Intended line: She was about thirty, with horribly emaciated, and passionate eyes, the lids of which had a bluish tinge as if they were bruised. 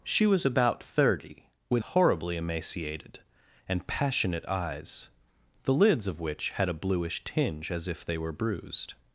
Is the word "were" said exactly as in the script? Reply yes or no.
yes